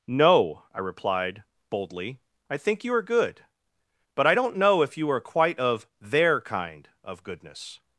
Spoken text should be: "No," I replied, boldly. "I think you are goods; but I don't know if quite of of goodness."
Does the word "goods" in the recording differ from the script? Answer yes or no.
yes